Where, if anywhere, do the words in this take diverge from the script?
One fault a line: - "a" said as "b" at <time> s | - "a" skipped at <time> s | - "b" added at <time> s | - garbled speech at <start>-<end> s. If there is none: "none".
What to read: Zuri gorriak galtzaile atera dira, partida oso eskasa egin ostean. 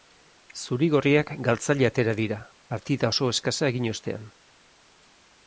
none